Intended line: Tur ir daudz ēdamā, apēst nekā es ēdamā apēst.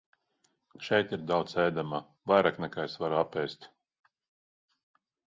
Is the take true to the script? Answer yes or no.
no